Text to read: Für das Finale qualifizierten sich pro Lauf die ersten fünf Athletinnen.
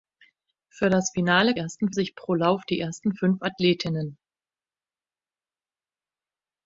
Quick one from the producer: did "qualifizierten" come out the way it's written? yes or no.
no